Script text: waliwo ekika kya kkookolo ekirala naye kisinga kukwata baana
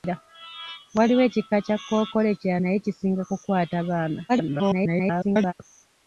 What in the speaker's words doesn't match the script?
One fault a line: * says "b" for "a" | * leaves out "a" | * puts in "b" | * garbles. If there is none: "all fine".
* garbles